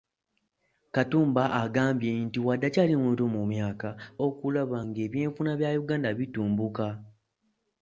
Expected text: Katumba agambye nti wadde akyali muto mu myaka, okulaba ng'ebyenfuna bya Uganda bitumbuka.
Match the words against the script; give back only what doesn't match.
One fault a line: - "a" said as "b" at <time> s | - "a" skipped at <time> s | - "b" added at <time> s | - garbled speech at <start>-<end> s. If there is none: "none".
none